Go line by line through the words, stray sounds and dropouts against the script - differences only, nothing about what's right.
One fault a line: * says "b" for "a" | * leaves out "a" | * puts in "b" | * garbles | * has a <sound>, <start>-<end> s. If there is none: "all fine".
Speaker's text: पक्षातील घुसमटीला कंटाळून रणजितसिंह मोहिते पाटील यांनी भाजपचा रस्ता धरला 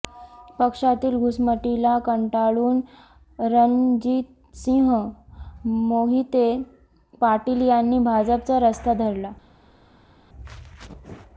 all fine